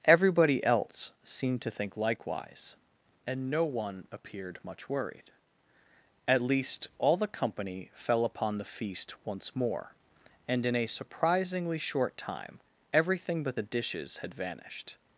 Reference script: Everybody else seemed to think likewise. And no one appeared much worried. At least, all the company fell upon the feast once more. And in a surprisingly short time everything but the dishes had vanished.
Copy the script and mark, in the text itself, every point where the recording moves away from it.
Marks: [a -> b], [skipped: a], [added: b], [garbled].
Everybody else seemed to think likewise. And no one appeared much worried. At least, all the company fell upon the feast once more. And in a surprisingly short time everything but the dishes had vanished.